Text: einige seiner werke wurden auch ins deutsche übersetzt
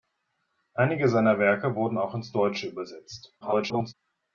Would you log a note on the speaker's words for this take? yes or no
yes